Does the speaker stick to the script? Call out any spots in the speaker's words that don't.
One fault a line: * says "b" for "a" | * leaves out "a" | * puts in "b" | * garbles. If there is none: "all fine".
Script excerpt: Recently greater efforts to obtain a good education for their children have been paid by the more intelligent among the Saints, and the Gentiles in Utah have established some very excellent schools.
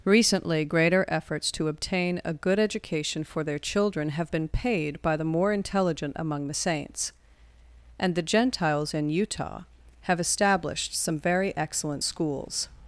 all fine